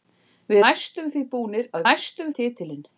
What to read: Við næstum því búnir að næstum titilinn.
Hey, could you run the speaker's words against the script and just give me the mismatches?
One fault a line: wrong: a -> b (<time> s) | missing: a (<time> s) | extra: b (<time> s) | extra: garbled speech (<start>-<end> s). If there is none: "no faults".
no faults